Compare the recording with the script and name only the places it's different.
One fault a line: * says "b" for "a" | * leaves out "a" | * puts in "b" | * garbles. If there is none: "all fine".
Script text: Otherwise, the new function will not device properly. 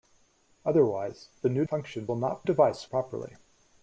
all fine